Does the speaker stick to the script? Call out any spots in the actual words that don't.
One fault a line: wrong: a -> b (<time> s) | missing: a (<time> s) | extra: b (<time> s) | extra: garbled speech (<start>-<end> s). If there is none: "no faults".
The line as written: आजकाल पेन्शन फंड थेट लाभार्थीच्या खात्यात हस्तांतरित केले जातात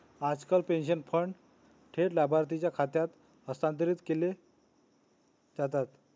no faults